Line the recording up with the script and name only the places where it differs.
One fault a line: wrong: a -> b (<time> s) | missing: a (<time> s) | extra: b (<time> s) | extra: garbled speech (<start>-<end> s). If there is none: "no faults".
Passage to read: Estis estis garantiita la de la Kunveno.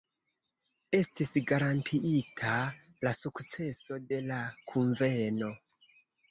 missing: estis (1.3 s)
extra: sukceso (3.2 s)